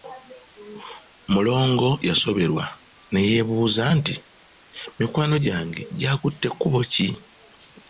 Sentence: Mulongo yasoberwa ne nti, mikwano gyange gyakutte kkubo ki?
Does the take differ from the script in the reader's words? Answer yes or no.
yes